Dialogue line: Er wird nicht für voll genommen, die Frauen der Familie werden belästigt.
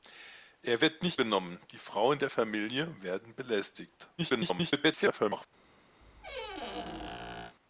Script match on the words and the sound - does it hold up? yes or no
no